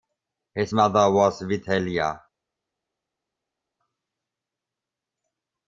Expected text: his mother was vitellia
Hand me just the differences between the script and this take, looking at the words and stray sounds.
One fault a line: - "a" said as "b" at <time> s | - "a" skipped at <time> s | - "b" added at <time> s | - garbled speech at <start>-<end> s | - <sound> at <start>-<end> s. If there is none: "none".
none